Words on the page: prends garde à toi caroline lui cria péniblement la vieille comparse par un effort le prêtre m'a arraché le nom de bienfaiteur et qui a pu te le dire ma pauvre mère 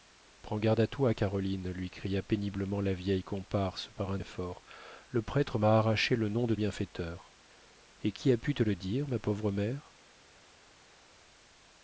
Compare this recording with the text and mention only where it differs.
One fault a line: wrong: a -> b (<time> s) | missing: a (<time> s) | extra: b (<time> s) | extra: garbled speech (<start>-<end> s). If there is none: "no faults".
no faults